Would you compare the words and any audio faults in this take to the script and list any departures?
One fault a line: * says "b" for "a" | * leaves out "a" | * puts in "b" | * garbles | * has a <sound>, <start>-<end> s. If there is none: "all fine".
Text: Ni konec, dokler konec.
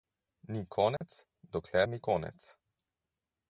* has a dropout, 1.0-1.0 s
* puts in "ni"